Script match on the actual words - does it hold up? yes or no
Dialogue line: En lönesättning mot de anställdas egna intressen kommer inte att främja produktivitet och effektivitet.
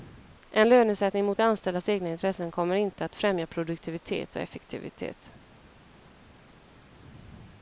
yes